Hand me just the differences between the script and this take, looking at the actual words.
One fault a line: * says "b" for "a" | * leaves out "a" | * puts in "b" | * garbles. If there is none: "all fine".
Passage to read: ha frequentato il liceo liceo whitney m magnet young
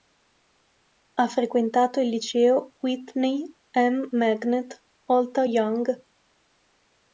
* leaves out "liceo"
* puts in "alta"